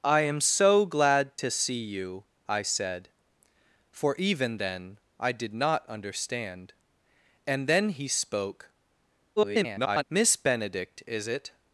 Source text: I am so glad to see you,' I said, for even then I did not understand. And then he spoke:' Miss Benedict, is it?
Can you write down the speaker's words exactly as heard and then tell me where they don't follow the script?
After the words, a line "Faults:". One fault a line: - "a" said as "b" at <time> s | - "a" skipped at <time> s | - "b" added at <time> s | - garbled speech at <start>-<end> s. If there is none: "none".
I am so glad to see you,' I said, for even then I did not understand. And then he spoke:' [garbled] Miss Benedict, is it?
Faults:
- garbled speech at 9.4-10.0 s